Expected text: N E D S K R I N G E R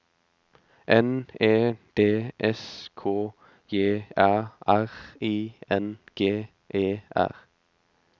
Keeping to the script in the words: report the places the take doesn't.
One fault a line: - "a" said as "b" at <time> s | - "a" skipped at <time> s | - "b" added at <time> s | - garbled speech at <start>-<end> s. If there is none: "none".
- "J Æ" added at 3.7 s